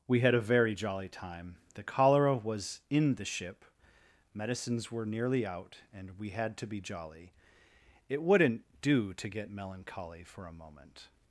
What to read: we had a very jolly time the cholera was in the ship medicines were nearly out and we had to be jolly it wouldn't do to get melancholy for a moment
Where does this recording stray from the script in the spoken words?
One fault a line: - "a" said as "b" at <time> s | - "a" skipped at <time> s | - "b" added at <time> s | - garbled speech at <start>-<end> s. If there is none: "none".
none